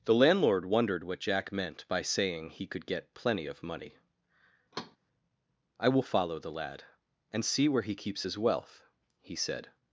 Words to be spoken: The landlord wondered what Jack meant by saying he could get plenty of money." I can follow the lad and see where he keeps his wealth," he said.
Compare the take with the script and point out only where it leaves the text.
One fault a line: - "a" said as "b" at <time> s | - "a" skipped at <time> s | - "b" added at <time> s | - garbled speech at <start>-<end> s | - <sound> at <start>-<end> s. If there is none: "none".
- thud at 4.7-5.0 s
- "can" said as "will" at 5.9 s